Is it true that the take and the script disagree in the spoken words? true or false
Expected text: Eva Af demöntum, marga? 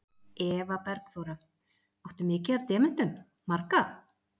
true